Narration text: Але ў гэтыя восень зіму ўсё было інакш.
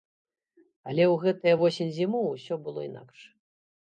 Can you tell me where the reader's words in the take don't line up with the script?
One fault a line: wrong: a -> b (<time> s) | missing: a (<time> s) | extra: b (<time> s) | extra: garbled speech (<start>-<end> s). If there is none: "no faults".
no faults